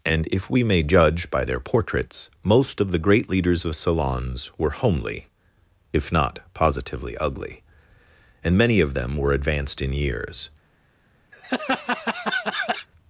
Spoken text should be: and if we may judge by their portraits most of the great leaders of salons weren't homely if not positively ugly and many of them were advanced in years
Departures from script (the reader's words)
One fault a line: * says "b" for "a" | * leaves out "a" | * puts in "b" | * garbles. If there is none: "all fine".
* says "were" for "weren't"